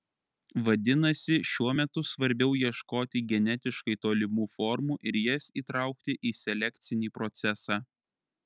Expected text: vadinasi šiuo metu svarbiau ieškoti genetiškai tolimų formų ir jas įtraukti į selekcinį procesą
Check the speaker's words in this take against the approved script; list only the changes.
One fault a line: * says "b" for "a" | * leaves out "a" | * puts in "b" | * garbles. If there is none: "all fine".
all fine